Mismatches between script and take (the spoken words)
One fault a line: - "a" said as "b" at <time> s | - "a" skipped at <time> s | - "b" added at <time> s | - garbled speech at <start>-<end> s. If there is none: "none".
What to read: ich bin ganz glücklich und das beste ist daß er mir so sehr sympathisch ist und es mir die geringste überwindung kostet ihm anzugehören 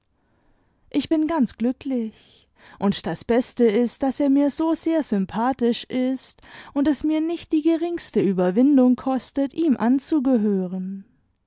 - "nicht" added at 7.2 s